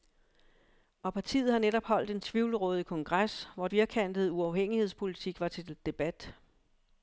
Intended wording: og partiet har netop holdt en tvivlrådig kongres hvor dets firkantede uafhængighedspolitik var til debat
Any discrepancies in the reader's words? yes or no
yes